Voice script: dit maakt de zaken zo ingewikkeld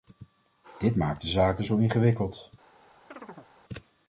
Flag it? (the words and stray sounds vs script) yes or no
yes